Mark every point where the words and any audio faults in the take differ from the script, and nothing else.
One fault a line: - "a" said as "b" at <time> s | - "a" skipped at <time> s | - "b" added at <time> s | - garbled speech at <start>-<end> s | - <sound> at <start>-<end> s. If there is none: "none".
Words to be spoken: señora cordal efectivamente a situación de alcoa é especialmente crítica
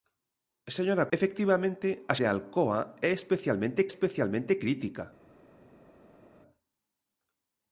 - "cordal" skipped at 1.1 s
- "situación" skipped at 2.1 s
- "especialmente" added at 3.9 s